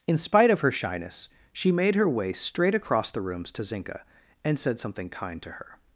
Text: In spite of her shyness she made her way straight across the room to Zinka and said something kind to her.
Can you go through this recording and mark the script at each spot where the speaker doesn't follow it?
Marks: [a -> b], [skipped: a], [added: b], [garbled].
In spite of her shyness she made her way straight across the [room -> rooms] to Zinka and said something kind to her.